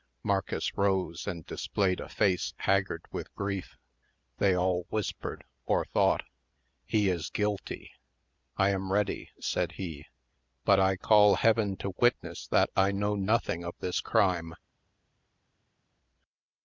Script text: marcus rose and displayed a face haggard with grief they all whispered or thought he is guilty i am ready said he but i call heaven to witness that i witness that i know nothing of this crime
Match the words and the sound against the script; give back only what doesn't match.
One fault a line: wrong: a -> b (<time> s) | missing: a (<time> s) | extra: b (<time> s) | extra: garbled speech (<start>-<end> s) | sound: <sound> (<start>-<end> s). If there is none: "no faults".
missing: witness that i (12.9 s)